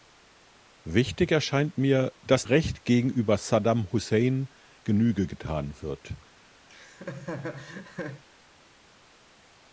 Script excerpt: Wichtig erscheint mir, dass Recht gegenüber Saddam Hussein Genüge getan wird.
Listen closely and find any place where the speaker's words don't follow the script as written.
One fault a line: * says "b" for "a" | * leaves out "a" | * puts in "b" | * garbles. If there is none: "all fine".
all fine